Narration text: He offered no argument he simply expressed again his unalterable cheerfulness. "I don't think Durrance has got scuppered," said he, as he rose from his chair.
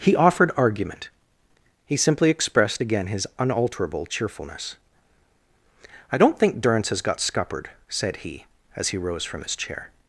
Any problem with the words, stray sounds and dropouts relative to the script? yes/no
yes